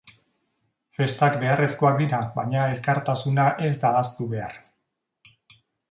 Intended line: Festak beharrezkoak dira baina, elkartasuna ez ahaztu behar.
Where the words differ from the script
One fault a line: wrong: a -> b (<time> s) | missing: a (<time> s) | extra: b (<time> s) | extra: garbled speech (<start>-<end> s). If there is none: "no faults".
extra: da (3.8 s)